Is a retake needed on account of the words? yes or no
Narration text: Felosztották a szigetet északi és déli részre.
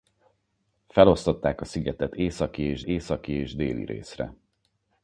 yes